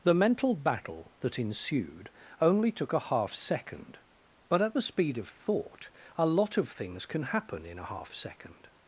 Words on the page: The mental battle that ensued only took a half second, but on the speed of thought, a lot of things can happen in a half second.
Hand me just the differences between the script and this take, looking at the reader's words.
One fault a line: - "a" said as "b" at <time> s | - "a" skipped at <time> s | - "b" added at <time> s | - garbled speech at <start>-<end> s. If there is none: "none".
- "on" said as "at" at 4.6 s